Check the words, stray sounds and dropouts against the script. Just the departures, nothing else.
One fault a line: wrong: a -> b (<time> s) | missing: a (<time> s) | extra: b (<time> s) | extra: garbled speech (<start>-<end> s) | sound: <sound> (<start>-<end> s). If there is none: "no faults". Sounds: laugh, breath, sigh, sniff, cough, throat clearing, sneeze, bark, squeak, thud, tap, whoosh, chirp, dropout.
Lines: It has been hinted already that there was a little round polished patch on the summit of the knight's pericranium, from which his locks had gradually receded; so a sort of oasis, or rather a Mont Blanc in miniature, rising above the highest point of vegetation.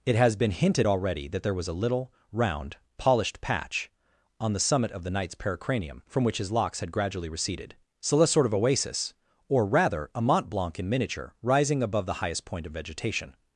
no faults